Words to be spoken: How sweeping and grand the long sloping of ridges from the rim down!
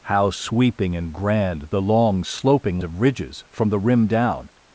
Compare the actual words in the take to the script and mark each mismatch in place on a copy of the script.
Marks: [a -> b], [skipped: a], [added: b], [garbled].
How sweeping and grand the long sloping of ridges from the rim down!